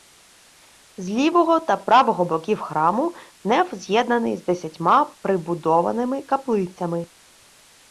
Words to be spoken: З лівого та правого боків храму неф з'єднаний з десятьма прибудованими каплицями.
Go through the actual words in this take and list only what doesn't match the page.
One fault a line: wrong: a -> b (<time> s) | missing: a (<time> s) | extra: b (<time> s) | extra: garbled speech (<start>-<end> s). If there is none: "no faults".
no faults